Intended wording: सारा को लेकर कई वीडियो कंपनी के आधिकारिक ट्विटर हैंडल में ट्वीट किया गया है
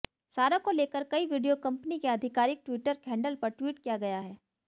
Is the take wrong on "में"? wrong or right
wrong